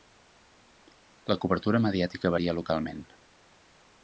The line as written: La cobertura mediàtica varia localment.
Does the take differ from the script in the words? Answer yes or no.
no